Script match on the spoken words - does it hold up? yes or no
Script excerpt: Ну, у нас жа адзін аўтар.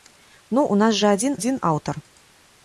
no